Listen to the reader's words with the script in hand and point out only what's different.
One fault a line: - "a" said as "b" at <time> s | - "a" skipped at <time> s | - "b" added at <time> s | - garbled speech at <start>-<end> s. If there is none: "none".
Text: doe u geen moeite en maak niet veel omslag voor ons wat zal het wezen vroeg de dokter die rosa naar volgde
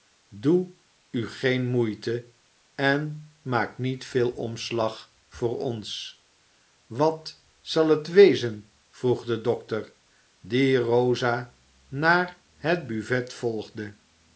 - "het buffet" added at 12.6 s